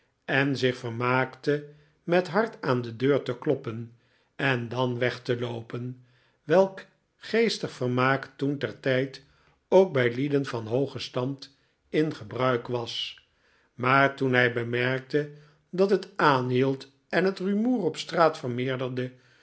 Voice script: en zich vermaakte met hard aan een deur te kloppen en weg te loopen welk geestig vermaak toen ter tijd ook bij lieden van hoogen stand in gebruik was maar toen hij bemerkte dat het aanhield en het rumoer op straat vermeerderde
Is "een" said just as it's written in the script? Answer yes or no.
no